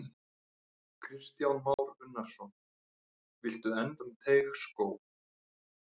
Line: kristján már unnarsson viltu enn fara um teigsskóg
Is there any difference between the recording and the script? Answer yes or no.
yes